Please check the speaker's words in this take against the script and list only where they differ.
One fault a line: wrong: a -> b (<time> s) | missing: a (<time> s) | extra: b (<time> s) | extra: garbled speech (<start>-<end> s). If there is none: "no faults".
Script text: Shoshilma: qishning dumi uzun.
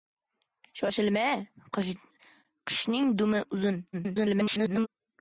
extra: garbled speech (3.9-4.9 s)